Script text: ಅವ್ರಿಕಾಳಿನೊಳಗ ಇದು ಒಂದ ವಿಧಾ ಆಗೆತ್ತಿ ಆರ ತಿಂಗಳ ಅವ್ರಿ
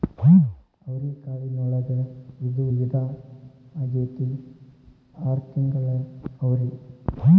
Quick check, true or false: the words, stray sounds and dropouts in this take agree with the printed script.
false